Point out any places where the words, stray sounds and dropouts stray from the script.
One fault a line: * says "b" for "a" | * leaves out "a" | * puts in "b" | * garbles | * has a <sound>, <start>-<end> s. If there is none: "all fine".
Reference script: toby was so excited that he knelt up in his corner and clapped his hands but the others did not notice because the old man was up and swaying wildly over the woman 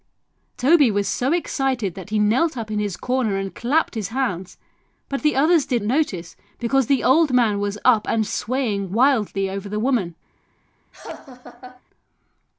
* leaves out "not"
* has a laugh, 10.9-11.8 s